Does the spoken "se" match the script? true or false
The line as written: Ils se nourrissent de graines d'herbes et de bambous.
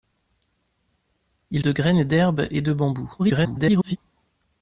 false